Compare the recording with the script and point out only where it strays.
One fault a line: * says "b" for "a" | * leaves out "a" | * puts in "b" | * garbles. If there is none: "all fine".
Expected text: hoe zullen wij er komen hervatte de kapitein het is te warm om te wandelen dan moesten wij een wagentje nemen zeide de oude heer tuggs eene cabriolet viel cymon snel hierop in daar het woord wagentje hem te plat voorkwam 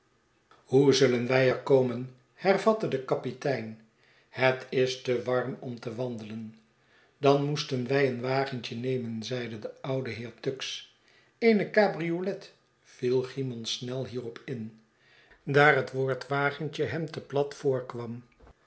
all fine